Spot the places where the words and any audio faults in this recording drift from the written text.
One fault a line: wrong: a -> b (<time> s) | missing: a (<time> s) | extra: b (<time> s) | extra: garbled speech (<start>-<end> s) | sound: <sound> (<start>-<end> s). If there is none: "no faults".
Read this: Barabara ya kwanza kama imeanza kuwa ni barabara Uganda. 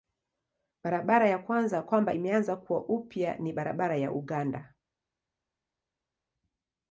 wrong: kama -> kwamba (1.8 s)
extra: upya (2.8 s)
extra: ya (4.0 s)